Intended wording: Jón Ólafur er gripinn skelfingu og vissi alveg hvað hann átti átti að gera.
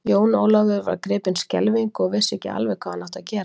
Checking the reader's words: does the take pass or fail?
fail